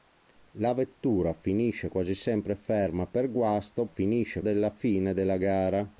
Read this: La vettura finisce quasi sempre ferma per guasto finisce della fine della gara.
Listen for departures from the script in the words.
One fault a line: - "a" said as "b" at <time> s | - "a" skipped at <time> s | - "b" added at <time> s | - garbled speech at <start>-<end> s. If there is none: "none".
none